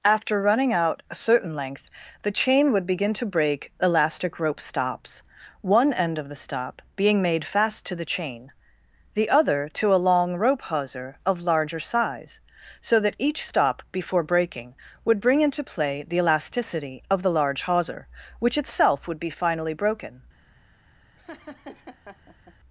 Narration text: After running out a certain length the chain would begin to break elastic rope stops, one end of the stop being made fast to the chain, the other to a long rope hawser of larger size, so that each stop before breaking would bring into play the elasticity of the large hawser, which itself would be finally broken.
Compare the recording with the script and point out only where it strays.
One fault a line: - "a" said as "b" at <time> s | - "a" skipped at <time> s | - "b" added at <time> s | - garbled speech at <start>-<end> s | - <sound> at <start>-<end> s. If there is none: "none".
- laugh at 21.2-22.6 s